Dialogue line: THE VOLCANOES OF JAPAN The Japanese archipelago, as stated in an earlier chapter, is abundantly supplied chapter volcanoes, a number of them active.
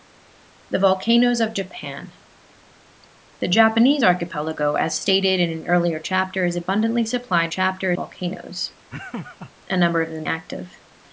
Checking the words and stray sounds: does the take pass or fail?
fail